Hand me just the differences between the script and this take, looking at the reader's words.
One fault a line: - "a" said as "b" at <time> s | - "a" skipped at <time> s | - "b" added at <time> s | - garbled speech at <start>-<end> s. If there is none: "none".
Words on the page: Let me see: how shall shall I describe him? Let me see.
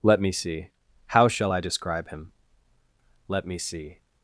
- "shall" skipped at 1.5 s